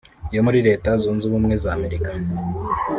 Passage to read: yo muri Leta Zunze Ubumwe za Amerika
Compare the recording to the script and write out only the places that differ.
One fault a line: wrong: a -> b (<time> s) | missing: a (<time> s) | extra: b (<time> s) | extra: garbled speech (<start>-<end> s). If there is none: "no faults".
no faults